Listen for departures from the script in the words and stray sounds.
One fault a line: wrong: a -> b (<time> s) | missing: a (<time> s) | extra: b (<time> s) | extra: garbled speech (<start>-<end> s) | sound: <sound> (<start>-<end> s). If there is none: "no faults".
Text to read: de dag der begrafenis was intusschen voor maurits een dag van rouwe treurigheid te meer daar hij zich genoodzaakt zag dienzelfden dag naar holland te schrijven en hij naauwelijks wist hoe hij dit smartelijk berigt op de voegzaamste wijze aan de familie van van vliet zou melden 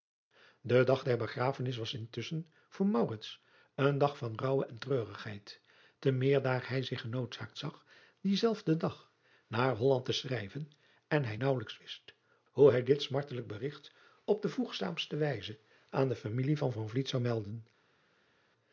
extra: en (4.7 s)